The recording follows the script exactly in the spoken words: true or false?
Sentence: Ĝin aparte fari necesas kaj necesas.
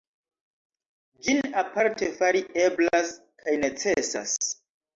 false